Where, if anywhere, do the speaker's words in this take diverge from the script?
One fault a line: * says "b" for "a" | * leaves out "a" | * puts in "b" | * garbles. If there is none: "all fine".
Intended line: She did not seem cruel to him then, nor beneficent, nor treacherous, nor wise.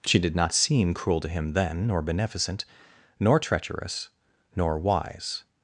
all fine